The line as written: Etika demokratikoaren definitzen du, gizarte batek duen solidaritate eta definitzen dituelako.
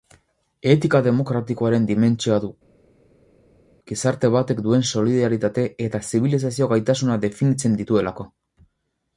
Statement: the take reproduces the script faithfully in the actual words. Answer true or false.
false